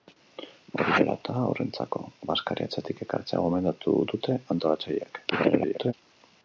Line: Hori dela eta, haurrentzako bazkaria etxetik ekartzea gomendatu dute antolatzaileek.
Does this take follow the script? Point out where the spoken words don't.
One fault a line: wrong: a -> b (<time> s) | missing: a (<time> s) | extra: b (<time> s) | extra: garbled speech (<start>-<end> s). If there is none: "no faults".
extra: garbled speech (5.3-5.9 s)